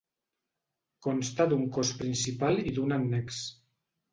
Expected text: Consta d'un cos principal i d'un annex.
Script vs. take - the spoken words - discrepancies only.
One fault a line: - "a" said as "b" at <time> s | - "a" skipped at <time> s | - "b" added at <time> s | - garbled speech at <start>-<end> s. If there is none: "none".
none